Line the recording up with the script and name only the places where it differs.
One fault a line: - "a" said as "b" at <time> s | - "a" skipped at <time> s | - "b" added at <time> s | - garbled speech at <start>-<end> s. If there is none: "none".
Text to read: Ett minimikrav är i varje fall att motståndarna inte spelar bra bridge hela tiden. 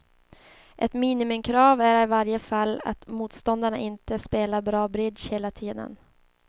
none